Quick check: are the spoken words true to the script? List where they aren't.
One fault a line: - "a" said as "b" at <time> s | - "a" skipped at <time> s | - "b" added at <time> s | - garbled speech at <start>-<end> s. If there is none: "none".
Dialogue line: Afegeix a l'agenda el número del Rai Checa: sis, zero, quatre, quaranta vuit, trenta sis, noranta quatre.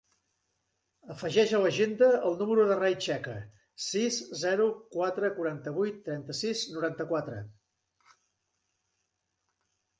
none